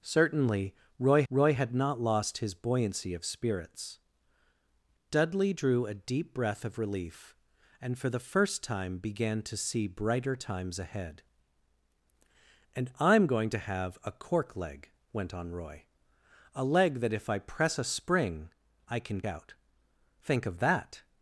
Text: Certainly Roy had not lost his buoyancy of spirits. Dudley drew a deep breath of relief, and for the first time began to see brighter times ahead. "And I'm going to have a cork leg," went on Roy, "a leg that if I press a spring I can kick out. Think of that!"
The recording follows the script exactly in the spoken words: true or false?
false